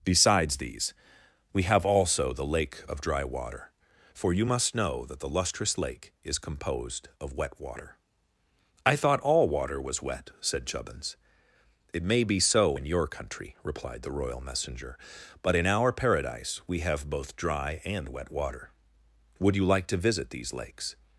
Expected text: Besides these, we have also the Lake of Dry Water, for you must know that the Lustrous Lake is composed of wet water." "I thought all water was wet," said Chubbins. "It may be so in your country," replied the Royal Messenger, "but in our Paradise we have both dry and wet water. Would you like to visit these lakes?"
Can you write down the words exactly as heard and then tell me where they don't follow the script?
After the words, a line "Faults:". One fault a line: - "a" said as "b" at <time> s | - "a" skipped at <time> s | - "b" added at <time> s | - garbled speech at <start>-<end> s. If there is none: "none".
Besides these, we have also the Lake of Dry Water, for you must know that the Lustrous Lake is composed of wet water." "I thought all water was wet," said Chubbins. "It may be so in your country," replied the Royal Messenger, "but in our Paradise we have both dry and wet water. Would you like to visit these lakes?"
Faults:
none